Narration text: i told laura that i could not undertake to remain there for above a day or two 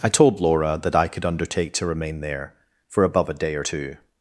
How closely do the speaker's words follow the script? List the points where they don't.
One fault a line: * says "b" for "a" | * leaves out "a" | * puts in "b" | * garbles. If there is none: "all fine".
* leaves out "not"